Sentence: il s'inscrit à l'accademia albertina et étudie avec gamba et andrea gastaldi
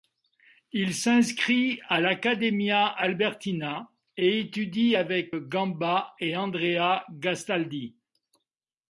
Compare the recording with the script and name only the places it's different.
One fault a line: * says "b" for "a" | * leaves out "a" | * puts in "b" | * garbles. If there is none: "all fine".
all fine